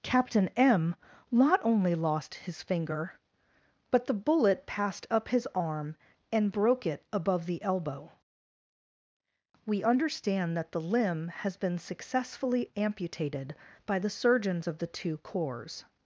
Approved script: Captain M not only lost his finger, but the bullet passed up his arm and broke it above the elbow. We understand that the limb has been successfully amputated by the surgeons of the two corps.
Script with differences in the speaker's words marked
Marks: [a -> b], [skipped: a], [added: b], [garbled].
Captain M not only lost his finger, but the bullet passed up his arm and broke it above the elbow. We understand that the limb has been successfully amputated by the surgeons of the two corps.